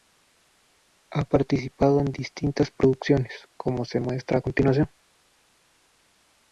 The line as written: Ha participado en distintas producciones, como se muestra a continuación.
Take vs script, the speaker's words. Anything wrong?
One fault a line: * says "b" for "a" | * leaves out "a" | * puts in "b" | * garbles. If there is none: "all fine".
all fine